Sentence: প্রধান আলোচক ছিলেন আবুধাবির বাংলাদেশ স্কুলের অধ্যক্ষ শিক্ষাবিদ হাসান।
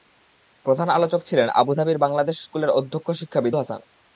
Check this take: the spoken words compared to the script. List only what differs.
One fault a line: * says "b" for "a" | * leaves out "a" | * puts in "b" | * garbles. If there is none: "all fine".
all fine